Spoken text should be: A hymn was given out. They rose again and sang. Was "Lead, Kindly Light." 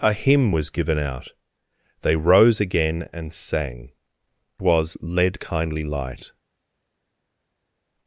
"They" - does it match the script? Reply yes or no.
yes